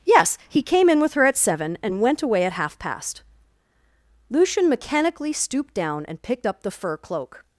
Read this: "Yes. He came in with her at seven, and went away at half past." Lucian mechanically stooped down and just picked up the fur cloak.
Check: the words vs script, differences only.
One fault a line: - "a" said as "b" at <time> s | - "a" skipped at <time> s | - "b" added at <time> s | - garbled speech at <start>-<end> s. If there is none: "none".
- "just" skipped at 6.2 s